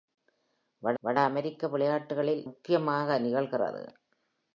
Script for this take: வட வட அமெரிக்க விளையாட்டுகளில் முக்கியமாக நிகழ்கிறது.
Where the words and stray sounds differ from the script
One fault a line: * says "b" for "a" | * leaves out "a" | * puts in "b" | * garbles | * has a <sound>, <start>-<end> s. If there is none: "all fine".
all fine